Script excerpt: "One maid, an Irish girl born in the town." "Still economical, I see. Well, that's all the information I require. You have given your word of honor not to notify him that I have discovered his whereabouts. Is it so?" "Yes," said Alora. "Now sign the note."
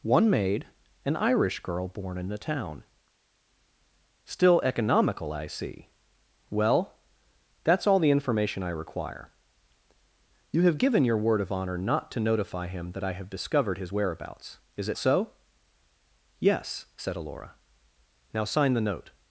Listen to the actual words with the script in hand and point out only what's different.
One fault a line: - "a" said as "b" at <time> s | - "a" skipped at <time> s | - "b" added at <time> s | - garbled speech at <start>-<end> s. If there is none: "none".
none